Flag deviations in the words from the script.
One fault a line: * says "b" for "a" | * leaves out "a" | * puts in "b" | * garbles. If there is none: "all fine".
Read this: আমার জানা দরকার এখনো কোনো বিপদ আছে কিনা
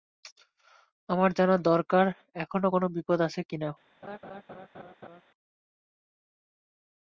all fine